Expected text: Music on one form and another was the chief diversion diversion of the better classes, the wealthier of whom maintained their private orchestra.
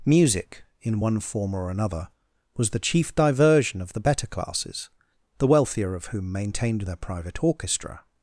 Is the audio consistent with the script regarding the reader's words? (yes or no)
no